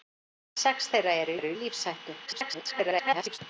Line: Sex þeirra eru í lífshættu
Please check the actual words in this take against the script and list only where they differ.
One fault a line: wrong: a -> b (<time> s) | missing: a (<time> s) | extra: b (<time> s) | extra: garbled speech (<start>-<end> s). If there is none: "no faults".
extra: eru (1.4 s)
extra: garbled speech (2.3-3.4 s)